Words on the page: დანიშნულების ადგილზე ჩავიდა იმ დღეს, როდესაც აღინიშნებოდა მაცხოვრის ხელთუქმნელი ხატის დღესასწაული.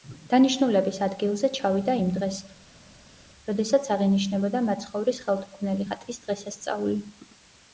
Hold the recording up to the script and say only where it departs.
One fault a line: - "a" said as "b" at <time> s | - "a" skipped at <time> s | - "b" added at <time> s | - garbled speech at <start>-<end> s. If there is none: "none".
none